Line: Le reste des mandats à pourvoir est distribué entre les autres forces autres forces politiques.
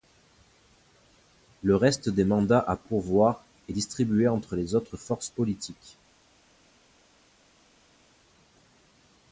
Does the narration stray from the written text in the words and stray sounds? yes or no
yes